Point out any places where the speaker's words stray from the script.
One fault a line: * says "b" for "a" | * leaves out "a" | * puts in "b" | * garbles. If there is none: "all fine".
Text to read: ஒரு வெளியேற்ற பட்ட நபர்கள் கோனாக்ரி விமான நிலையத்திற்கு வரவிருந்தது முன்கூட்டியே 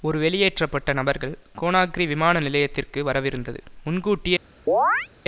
all fine